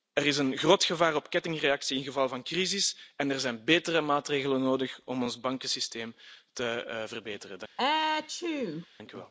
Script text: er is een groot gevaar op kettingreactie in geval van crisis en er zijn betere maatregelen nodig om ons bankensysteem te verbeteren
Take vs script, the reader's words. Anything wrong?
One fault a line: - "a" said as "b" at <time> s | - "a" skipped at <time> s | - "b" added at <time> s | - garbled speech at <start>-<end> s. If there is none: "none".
none